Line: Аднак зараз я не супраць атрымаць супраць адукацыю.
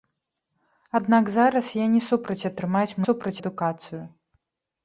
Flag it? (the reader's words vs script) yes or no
no